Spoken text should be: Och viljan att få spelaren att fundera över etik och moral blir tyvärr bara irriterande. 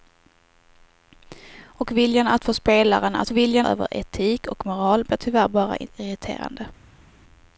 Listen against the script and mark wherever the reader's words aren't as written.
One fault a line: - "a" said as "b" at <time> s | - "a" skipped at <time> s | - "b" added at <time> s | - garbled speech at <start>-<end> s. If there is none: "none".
- "fundera" said as "viljan" at 3.3 s